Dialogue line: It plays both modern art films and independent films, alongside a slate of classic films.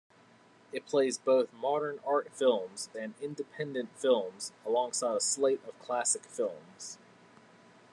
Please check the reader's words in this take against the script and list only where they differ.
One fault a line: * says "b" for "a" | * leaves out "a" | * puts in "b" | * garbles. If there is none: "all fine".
all fine